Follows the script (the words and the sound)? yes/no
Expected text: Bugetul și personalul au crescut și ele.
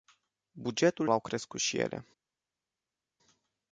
no